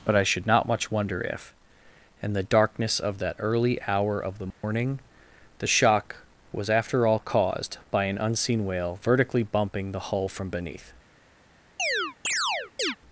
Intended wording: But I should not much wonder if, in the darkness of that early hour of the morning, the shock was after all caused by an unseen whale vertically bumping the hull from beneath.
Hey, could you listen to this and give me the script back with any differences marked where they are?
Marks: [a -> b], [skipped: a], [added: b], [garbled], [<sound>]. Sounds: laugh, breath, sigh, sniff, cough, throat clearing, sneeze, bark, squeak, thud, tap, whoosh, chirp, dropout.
But I should not much wonder if, in the darkness of that early hour of the morning, [dropout] the shock was after all caused by an unseen whale vertically bumping the hull from beneath. [chirp]